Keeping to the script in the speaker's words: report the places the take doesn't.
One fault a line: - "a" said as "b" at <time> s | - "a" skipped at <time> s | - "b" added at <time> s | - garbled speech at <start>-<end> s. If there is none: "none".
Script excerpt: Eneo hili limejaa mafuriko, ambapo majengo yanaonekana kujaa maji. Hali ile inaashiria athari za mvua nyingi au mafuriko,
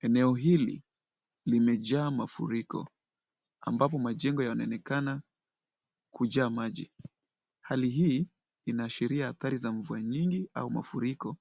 - "ile" said as "hii" at 7.9 s